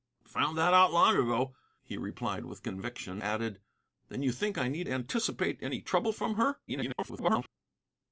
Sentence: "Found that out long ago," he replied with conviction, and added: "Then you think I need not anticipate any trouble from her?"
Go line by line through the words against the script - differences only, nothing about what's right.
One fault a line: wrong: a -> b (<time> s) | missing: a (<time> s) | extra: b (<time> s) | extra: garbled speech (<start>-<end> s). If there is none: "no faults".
missing: and (3.2 s)
missing: not (4.9 s)
extra: garbled speech (6.7-7.5 s)